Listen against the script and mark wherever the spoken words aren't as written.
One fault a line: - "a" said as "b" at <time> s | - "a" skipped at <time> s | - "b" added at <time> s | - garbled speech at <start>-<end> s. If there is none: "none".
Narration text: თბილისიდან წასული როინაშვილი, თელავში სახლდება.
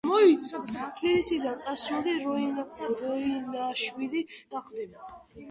- "თელავში" skipped at 4.2 s